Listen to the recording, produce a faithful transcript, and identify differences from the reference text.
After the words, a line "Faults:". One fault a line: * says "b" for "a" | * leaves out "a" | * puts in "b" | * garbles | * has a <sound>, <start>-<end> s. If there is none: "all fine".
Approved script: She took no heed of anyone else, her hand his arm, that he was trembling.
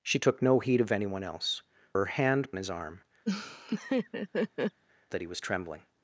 She took no heed of anyone else, her hand his arm, that he was trembling.
Faults:
* has a laugh, 3.3-4.8 s